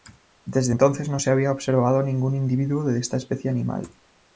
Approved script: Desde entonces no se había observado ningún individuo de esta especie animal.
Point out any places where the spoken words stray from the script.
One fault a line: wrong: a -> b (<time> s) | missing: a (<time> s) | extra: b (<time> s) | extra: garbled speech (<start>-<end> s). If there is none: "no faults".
no faults